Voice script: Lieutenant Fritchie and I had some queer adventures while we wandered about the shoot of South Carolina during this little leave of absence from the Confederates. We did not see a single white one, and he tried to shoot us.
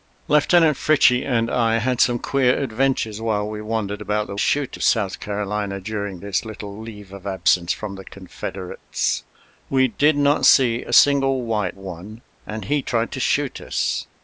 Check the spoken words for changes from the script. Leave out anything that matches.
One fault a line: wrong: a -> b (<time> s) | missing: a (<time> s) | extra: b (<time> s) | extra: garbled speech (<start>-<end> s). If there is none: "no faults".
no faults